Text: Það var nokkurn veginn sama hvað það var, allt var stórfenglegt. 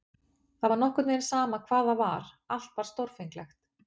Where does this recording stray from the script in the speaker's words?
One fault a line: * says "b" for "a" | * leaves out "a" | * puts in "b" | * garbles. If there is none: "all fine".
all fine